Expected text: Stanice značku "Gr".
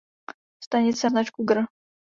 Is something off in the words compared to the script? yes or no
no